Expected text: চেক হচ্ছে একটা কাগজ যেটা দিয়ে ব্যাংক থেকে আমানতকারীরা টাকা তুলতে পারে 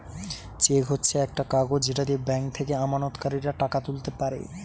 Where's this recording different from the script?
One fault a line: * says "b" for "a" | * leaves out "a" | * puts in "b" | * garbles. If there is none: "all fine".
all fine